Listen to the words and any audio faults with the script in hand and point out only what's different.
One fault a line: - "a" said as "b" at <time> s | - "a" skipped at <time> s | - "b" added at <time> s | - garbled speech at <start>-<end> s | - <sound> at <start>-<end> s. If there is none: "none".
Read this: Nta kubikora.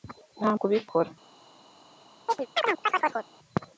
- chirp at 2.3-3.3 s